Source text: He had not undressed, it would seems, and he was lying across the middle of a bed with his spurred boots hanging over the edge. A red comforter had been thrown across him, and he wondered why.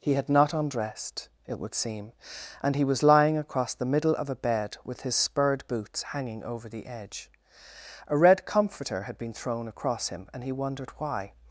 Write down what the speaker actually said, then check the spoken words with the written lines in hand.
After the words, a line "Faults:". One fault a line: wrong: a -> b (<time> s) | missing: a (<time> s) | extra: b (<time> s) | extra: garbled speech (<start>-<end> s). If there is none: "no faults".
He had not undressed, it would seem, and he was lying across the middle of a bed with his spurred boots hanging over the edge. A red comforter had been thrown across him, and he wondered why.
Faults:
wrong: seems -> seem (1.8 s)